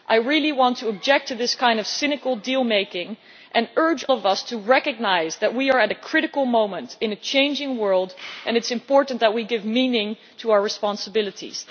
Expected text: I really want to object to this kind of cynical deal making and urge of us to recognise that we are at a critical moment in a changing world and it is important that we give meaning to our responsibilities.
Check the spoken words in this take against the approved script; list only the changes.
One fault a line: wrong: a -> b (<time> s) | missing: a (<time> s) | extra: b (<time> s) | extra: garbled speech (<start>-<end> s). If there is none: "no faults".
no faults